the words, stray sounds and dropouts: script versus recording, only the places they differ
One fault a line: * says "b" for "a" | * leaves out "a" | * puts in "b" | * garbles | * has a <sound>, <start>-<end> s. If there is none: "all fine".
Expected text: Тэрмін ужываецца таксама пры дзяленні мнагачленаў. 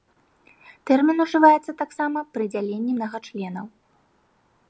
all fine